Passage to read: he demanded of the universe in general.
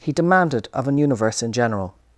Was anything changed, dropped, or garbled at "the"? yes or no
yes